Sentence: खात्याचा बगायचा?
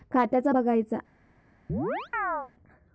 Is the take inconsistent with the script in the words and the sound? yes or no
yes